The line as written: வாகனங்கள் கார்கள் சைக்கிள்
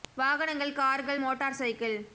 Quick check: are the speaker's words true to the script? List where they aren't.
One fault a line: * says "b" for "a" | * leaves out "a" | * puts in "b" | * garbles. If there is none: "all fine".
* puts in "மோட்டார்"